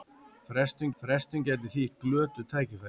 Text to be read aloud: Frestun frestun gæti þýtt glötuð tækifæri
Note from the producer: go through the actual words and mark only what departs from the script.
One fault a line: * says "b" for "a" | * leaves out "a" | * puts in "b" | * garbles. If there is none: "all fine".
all fine